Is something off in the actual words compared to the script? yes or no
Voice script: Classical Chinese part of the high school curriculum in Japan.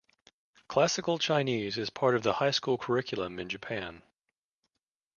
yes